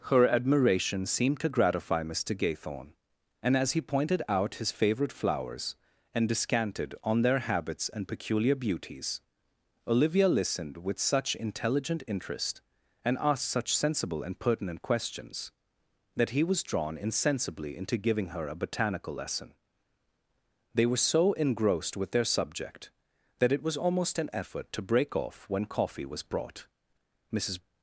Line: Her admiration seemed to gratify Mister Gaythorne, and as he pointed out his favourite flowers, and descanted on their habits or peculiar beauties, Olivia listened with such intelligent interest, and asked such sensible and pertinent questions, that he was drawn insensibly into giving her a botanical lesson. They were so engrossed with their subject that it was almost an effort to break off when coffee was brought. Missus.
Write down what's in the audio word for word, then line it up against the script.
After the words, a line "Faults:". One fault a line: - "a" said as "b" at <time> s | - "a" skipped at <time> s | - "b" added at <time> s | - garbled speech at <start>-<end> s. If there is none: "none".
Her admiration seemed to gratify Mister Gaythorne, and as he pointed out his favourite flowers, and descanted on their habits and peculiar beauties, Olivia listened with such intelligent interest, and asked such sensible and pertinent questions, that he was drawn insensibly into giving her a botanical lesson. They were so engrossed with their subject that it was almost an effort to break off when coffee was brought. Missus.
Faults:
- "or" said as "and" at 7.9 s